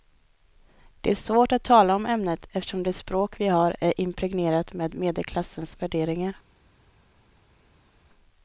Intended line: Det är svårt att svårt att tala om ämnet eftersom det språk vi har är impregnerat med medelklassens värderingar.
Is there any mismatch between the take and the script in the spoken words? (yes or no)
yes